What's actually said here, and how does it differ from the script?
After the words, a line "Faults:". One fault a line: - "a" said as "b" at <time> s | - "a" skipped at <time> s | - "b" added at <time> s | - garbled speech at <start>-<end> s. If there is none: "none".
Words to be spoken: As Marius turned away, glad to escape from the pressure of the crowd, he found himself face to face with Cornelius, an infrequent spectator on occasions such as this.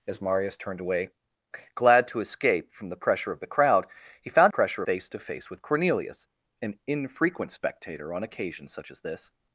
As Marius turned away, glad to escape from the pressure of the crowd, he found pressure face to face with Cornelius, an infrequent spectator on occasions such as this.
Faults:
- "himself" said as "pressure" at 4.5 s